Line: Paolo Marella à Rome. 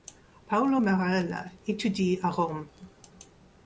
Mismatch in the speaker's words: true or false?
true